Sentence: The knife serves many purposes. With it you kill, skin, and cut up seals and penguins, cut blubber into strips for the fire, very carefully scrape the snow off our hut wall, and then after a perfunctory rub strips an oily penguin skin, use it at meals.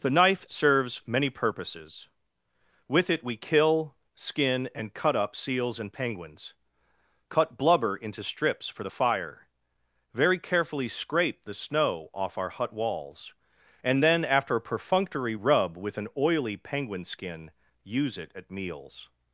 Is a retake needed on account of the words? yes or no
yes